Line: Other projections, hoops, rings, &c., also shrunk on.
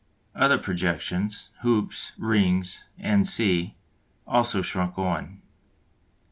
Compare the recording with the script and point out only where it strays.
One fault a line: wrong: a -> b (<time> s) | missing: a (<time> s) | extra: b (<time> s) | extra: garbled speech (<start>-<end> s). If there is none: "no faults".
no faults